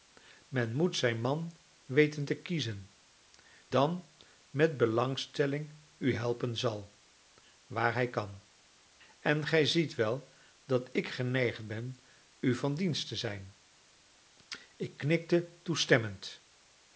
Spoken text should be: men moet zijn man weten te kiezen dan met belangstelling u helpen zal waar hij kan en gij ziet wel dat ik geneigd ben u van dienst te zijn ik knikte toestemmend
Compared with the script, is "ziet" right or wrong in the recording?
right